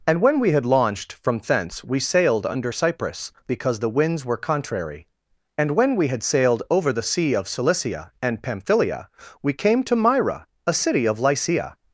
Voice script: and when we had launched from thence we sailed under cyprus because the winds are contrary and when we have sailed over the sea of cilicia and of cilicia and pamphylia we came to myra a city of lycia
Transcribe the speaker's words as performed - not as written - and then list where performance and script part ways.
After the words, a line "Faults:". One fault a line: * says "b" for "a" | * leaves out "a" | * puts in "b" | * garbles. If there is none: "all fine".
and when we had launched from thence we sailed under cyprus because the winds were contrary and when we had sailed over the sea of cilicia and pamphylia we came to myra a city of lycia
Faults:
* says "were" for "are"
* says "had" for "have"
* leaves out "of cilicia and"